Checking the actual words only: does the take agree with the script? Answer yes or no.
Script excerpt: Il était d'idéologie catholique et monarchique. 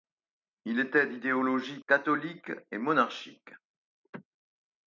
yes